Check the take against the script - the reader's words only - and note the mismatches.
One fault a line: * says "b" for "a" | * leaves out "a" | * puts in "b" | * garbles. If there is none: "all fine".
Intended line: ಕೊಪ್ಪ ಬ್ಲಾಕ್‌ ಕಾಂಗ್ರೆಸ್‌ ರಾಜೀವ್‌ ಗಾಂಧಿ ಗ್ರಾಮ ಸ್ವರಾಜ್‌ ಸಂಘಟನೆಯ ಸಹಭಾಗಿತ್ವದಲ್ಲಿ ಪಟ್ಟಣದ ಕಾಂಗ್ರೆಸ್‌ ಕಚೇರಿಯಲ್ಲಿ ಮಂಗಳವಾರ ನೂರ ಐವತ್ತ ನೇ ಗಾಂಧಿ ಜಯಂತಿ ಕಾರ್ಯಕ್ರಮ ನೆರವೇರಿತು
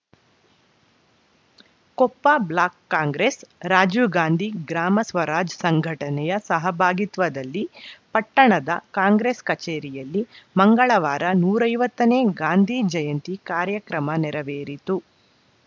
all fine